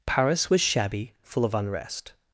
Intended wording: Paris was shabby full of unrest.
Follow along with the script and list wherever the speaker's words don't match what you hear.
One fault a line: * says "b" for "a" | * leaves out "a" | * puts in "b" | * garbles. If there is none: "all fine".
all fine